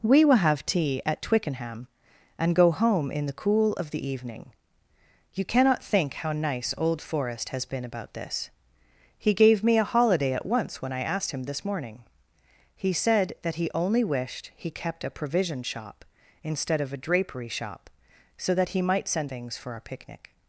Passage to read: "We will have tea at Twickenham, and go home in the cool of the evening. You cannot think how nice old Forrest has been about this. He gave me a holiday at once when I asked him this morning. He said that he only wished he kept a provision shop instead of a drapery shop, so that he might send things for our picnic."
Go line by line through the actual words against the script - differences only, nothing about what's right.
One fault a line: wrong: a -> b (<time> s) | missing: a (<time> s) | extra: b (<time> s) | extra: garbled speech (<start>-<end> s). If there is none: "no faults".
no faults